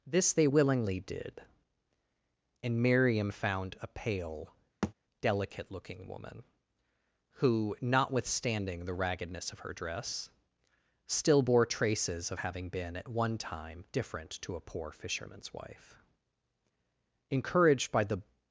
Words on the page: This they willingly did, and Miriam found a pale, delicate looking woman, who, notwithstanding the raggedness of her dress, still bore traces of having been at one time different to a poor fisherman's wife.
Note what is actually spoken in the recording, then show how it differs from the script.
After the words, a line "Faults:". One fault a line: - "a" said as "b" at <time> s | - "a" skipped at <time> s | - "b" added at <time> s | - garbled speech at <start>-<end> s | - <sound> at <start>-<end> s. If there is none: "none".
This they willingly did, and Miriam found a pale, delicate looking woman, who, notwithstanding the raggedness of her dress, still bore traces of having been at one time different to a poor fisherman's wife. Encouraged by the
Faults:
- thud at 4.8-4.9 s
- "Encouraged by the" added at 17.3 s